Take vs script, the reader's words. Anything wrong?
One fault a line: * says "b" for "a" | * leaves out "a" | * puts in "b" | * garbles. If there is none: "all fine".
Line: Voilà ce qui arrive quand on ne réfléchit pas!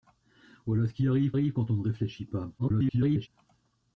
* puts in "arrive"
* garbles